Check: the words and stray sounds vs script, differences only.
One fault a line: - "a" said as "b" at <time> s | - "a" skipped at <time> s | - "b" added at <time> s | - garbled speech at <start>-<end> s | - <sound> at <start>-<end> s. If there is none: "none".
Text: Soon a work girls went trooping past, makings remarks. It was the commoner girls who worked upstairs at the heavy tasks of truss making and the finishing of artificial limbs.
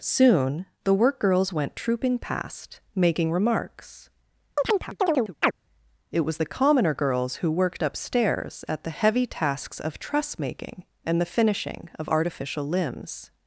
- "a" said as "the" at 0.8 s
- "makings" said as "making" at 3.0 s
- chirp at 4.6-5.5 s